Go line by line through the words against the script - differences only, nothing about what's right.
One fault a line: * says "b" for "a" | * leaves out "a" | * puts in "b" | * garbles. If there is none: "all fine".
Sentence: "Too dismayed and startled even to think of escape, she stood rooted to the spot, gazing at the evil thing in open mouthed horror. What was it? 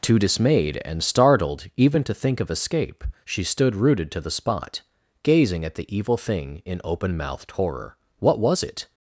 all fine